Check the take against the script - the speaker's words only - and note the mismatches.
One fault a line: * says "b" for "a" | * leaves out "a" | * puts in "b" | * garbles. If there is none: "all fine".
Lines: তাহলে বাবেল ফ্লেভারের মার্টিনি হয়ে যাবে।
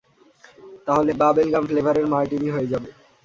* puts in "গাম"